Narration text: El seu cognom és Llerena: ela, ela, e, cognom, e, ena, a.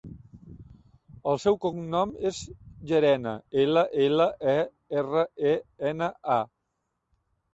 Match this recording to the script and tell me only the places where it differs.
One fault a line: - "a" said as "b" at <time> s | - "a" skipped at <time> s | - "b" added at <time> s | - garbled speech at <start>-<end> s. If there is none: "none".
- "cognom" said as "erra" at 5.0 s